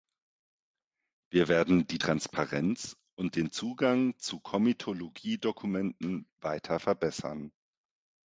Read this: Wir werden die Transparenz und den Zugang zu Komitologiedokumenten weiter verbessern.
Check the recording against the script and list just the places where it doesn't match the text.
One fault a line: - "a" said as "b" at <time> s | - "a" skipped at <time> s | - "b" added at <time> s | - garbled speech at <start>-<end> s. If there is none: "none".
none